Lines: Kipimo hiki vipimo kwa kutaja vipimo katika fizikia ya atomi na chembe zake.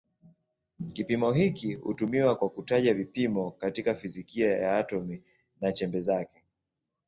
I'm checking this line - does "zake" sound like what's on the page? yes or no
yes